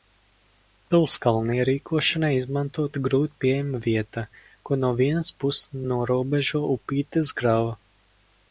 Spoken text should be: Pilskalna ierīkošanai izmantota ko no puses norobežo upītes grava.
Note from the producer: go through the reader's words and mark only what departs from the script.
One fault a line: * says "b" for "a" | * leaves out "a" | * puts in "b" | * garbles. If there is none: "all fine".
* puts in "grūti pieejama vieta"
* puts in "vienas"